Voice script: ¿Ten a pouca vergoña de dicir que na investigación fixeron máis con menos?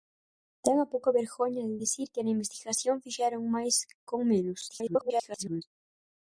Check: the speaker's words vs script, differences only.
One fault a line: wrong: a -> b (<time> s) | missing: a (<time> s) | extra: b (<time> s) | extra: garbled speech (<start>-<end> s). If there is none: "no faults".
extra: garbled speech (4.7-5.6 s)